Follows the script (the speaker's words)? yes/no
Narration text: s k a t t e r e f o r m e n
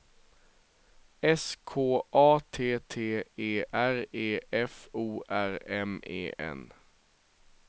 yes